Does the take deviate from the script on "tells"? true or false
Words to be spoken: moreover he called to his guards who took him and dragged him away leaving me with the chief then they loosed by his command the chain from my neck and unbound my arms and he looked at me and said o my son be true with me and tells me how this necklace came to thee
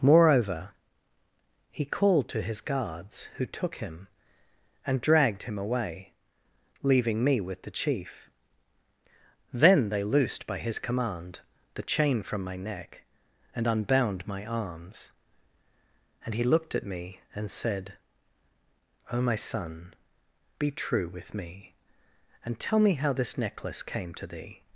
true